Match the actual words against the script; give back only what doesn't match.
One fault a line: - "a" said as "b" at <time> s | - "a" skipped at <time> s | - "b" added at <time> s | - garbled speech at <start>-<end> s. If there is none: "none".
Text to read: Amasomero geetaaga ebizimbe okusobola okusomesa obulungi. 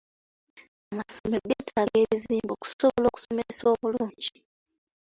none